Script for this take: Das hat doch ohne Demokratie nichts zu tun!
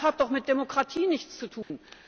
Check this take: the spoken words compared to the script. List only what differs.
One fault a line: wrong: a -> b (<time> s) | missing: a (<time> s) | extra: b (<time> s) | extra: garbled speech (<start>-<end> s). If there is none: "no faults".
wrong: ohne -> mit (0.3 s)